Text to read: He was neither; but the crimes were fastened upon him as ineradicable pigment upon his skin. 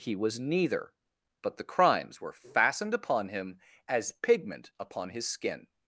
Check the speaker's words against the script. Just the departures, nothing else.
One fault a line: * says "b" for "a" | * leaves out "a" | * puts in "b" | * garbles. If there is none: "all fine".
* leaves out "ineradicable"